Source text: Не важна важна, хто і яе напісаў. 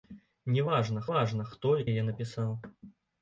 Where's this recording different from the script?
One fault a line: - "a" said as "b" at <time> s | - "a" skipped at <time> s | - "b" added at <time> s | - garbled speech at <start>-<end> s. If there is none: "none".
none